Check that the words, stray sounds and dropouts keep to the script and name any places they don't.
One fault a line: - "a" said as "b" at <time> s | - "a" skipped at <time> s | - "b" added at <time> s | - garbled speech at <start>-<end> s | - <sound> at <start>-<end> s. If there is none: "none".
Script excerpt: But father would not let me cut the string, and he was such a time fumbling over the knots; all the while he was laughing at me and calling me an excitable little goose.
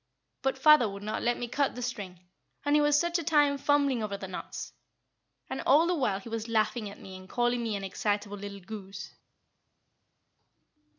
- "and" added at 5.5 s